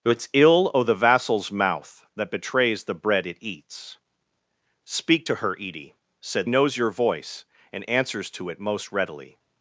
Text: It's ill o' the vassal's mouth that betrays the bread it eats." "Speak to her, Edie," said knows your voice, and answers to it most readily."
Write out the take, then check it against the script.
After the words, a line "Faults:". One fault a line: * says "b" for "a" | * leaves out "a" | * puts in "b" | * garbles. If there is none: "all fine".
It's ill o' the vassal's mouth that betrays the bread it eats." "Speak to her, Edie," said knows your voice, and answers to it most readily."
Faults:
all fine